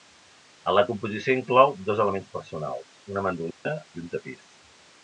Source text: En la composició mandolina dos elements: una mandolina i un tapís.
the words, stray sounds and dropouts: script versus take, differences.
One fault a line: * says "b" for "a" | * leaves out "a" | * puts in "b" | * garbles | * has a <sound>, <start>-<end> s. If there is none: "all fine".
* says "inclou" for "mandolina"
* puts in "personals"
* has a dropout, 3.5-3.7 s